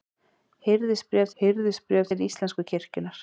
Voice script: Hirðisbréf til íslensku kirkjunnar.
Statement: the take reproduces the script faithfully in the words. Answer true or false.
false